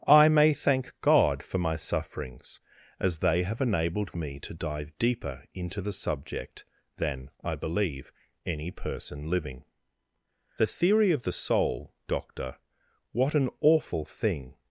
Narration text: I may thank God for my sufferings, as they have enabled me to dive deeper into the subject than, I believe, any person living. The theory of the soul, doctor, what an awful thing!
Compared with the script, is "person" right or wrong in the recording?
right